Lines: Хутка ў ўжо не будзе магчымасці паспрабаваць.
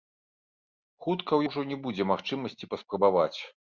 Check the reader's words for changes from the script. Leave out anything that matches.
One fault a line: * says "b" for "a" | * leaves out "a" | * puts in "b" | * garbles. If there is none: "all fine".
all fine